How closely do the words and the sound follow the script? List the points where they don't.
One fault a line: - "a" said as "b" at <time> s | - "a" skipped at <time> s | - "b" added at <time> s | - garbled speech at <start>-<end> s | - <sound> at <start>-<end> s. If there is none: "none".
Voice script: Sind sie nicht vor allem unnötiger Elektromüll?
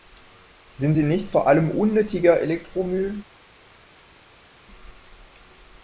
none